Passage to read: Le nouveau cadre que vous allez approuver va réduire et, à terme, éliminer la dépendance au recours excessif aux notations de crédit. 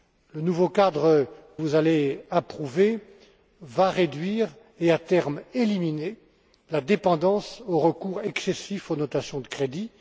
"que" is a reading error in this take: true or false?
true